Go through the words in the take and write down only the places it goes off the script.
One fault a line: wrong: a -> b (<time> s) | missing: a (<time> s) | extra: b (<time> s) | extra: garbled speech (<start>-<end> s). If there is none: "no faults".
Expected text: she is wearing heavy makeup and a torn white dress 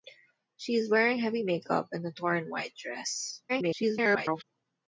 extra: garbled speech (3.5-4.4 s)